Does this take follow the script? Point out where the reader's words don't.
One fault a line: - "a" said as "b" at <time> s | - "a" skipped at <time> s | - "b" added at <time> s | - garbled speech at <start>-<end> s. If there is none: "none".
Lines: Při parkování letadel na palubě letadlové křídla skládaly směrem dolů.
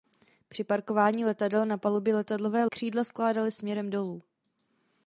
none